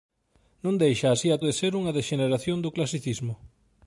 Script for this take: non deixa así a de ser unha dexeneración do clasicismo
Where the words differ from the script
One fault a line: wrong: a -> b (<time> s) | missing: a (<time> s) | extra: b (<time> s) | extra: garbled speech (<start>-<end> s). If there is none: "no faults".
no faults